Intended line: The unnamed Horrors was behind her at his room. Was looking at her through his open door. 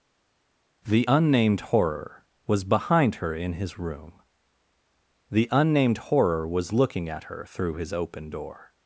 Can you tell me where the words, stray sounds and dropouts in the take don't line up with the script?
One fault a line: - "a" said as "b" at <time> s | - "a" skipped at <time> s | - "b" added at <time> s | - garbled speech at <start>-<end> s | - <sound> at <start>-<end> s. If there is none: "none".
- "Horrors" said as "Horror" at 1.6 s
- "at" said as "in" at 3.3 s
- "The unnamed Horror" added at 5.3 s